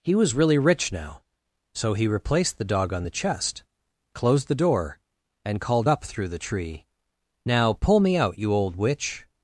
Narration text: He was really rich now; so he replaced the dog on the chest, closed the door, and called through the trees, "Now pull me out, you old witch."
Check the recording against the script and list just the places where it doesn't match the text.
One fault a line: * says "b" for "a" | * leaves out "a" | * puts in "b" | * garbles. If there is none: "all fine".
* puts in "up"
* says "tree" for "trees"